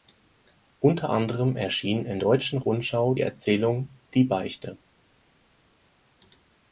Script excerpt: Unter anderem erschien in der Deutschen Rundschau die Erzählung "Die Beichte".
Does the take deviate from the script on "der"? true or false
true